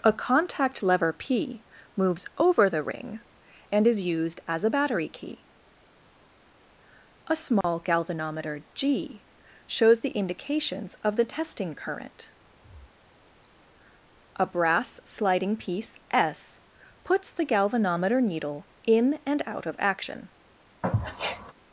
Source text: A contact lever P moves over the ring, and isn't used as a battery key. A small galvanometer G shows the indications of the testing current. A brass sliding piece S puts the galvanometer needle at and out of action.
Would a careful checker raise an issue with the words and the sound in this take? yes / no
yes